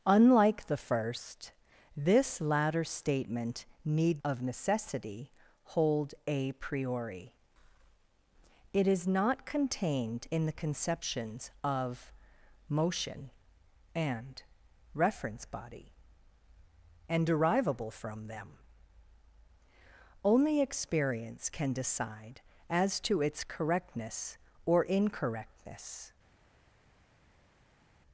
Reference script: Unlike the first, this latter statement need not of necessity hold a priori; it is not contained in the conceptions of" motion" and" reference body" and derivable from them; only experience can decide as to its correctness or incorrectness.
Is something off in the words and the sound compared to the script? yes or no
yes